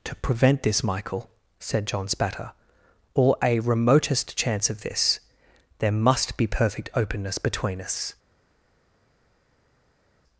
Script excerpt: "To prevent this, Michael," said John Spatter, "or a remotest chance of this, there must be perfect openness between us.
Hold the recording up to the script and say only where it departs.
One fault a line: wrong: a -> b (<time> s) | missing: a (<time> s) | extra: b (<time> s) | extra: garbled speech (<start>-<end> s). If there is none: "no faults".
no faults